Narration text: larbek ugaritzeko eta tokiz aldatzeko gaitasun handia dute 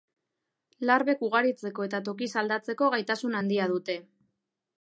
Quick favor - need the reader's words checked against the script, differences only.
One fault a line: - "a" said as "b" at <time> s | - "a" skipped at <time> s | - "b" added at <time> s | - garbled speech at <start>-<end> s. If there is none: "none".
none